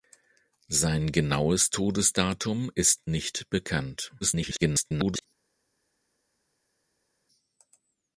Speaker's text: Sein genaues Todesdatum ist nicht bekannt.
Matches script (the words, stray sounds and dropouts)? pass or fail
fail